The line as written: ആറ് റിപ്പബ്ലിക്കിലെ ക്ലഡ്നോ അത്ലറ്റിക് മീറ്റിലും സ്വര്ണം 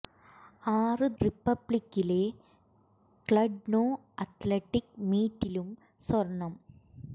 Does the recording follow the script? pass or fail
pass